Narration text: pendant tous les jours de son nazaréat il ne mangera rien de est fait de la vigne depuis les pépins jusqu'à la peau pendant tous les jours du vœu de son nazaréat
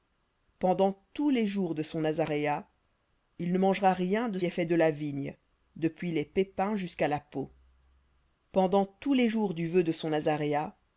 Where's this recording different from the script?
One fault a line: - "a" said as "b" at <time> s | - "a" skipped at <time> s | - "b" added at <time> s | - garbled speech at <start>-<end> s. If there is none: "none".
none